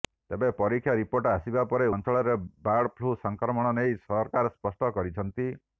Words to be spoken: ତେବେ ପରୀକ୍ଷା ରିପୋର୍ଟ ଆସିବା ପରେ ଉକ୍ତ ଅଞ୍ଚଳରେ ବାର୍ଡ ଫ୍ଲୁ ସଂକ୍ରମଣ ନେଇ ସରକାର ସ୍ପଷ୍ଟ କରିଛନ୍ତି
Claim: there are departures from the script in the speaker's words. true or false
true